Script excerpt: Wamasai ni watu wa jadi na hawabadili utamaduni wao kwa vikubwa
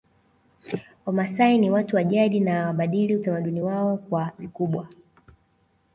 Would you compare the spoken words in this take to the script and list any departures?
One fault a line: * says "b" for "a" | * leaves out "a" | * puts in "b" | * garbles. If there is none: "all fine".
all fine